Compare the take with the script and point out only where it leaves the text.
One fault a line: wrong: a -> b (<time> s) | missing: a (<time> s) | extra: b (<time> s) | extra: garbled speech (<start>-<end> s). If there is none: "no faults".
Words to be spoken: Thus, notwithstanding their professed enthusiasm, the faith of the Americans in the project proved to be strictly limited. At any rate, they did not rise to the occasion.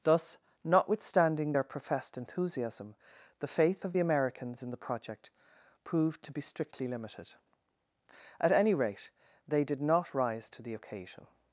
no faults